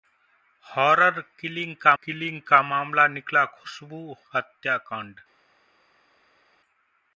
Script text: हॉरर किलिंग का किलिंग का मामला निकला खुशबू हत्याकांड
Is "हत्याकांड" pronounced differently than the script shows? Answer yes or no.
no